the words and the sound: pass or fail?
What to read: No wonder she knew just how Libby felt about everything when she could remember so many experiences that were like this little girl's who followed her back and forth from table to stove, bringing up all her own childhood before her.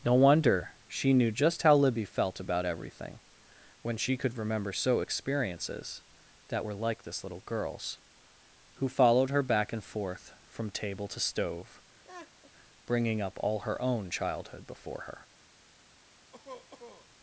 fail